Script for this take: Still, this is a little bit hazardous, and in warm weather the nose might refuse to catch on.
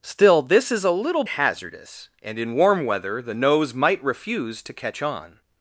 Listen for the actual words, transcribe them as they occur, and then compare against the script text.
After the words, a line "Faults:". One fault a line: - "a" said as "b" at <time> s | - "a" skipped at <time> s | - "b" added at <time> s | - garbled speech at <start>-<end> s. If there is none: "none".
Still, this is a little hazardous, and in warm weather the nose might refuse to catch on.
Faults:
- "bit" skipped at 1.2 s